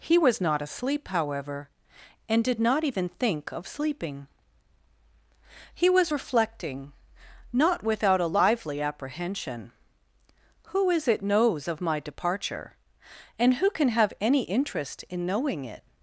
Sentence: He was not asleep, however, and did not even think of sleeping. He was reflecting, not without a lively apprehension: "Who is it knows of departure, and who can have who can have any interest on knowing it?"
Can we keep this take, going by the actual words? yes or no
no